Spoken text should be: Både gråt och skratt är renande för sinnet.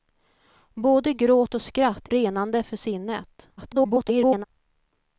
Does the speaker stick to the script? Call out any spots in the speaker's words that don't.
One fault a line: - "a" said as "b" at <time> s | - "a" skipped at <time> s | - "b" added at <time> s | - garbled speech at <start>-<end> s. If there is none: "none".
- "är" skipped at 2.1 s
- garbled speech at 3.6-4.4 s